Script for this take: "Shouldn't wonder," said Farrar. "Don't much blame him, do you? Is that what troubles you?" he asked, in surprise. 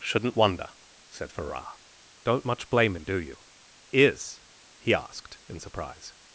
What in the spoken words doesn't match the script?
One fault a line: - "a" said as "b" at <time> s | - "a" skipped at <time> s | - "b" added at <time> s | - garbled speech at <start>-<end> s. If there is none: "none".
- "that what troubles you" skipped at 4.4 s